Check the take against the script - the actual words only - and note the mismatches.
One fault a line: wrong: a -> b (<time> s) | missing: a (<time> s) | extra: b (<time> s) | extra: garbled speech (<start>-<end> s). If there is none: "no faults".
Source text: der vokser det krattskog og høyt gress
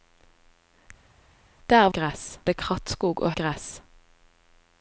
wrong: vokser -> gress (1.9 s)
missing: høyt (3.3 s)